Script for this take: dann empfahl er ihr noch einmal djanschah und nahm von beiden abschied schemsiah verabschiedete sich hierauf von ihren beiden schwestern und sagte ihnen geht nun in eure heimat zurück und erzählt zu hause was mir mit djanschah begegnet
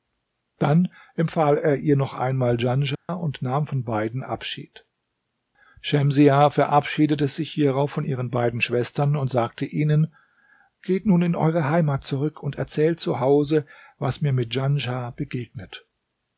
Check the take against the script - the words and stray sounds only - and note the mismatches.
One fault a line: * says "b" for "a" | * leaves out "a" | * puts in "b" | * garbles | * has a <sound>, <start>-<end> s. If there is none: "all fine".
* has a dropout, 2.9-3.1 s